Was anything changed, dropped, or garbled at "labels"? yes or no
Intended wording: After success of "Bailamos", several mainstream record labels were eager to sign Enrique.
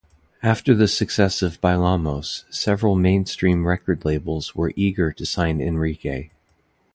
no